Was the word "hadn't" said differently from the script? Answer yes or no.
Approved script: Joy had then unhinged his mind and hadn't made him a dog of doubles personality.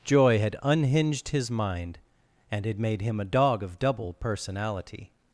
yes